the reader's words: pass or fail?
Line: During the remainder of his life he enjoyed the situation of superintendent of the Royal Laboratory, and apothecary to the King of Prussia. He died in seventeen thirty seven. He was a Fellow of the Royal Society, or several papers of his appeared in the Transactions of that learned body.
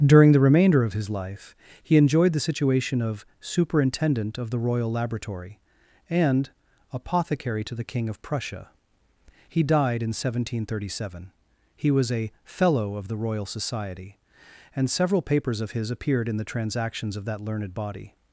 fail